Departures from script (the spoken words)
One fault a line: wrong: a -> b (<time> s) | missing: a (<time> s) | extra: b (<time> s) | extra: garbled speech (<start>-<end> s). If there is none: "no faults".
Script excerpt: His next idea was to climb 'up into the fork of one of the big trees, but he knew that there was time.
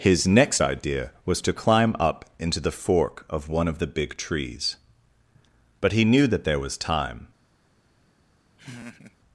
no faults